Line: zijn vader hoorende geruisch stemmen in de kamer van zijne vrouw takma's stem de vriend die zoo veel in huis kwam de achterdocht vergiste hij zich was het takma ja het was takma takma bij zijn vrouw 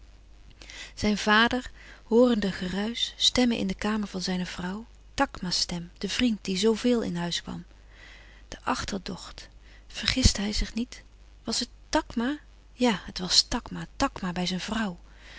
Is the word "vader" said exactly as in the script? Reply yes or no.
yes